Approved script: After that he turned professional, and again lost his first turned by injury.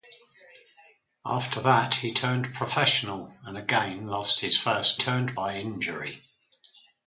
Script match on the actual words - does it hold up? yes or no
yes